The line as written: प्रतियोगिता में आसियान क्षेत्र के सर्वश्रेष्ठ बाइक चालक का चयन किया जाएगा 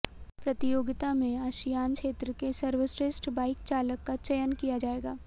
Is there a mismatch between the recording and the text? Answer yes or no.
no